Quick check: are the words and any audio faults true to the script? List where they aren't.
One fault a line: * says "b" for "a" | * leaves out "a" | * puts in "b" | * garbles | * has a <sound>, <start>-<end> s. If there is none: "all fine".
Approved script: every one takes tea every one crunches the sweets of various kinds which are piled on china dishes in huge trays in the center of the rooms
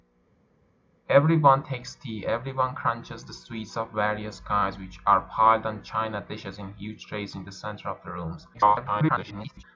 * garbles